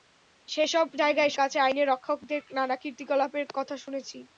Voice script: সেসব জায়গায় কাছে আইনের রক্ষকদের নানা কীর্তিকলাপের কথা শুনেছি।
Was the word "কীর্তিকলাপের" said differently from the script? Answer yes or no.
no